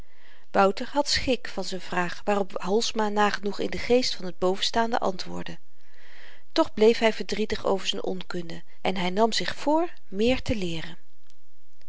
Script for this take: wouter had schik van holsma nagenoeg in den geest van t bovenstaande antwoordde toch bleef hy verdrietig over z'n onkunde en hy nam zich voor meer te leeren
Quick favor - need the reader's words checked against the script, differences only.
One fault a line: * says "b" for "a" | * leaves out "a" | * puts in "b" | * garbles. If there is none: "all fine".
* puts in "z'n vraag waarop"